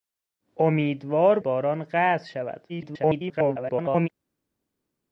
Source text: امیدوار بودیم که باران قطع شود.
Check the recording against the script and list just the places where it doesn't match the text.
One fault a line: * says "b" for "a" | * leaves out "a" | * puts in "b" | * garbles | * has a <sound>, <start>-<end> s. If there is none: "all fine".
* leaves out "بودیم که"
* garbles